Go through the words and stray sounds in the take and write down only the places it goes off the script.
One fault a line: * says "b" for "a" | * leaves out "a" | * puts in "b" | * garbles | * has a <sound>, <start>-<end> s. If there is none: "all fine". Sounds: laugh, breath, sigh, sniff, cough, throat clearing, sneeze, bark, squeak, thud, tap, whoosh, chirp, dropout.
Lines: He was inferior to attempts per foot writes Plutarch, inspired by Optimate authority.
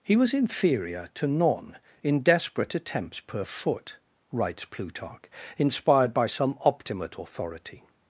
* puts in "none in desperate"
* puts in "some"